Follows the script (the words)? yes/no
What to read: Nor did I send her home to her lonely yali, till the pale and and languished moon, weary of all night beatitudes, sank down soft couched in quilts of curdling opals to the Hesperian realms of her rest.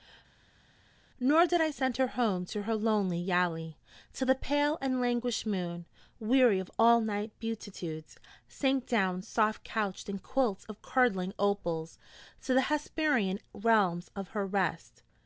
no